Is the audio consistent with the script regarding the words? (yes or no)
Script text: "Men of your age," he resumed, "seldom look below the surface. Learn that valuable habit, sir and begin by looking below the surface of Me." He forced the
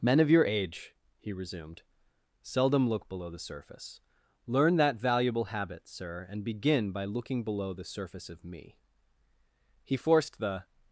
yes